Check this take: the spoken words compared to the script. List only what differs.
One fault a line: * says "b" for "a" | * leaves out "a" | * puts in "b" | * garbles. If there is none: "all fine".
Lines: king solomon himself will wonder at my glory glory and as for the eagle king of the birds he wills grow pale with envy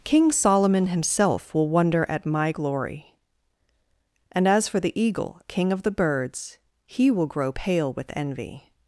* leaves out "glory"
* says "will" for "wills"